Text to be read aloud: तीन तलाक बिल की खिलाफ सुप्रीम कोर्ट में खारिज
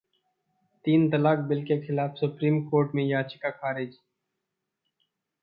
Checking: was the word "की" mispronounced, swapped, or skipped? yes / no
yes